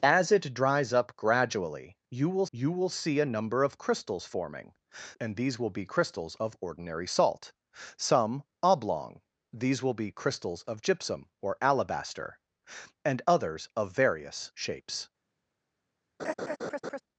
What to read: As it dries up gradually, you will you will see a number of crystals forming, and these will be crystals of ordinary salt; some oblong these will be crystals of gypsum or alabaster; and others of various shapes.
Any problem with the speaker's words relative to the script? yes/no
no